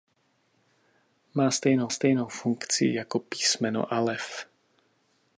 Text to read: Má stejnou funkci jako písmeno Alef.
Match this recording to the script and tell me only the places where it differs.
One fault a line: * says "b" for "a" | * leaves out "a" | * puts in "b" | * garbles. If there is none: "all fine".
* puts in "stejnou"